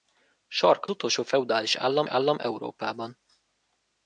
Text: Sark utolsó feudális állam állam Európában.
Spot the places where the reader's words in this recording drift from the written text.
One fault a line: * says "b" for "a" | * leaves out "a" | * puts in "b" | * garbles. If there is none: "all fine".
all fine